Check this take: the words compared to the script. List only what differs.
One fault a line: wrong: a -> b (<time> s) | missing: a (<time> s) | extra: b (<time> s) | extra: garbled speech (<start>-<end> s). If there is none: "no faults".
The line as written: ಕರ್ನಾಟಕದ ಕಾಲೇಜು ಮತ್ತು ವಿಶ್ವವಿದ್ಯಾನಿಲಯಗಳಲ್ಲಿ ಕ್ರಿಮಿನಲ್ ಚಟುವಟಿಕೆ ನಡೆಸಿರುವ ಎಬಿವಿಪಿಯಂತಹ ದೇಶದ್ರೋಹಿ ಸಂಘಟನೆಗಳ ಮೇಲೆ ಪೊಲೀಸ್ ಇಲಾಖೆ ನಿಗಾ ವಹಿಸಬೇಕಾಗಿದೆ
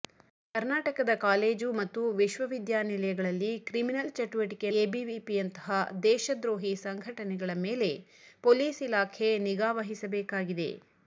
missing: ನಡೆಸಿರುವ (4.7 s)